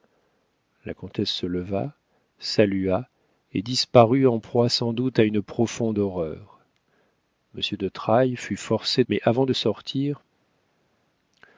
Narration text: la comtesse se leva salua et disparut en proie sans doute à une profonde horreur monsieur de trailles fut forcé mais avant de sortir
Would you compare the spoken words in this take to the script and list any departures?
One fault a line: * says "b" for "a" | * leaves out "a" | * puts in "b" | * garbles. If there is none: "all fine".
all fine